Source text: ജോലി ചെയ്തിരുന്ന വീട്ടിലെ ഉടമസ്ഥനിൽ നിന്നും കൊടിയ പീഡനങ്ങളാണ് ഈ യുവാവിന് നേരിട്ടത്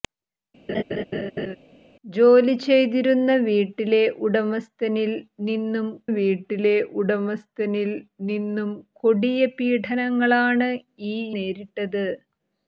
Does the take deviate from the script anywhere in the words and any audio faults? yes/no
yes